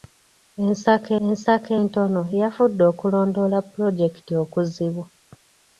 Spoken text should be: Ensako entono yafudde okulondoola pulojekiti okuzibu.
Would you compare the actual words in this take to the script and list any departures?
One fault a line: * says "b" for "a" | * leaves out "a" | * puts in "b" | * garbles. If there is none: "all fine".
* puts in "ensako"